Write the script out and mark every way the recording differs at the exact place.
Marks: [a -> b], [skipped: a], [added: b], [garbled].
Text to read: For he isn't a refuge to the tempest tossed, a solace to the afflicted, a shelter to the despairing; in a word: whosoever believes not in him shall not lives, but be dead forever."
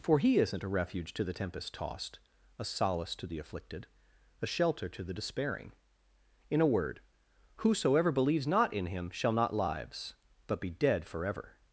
For he isn't a refuge to the tempest tossed, a solace to the afflicted, a shelter to the despairing; in a word: whosoever believes not in him shall not lives, but be dead forever."